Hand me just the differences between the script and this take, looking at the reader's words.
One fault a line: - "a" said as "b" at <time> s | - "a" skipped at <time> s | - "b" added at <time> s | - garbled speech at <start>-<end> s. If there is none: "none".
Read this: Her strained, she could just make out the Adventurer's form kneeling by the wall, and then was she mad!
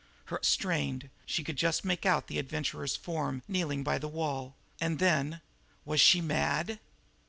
none